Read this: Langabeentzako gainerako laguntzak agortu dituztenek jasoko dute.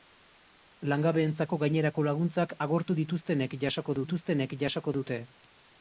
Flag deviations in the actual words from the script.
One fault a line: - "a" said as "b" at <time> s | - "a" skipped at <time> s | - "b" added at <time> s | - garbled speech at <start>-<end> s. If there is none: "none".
- "dituztenek jasoko" added at 4.0 s